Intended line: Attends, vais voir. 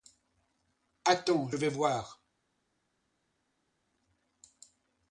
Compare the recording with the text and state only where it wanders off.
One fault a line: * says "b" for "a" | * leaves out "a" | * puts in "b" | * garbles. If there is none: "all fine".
all fine